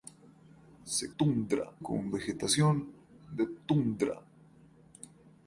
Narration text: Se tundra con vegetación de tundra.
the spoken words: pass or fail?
pass